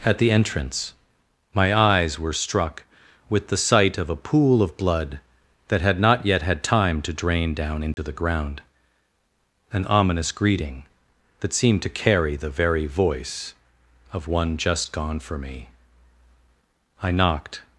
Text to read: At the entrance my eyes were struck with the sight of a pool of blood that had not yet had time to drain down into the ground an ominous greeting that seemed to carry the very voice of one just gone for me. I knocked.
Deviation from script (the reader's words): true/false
false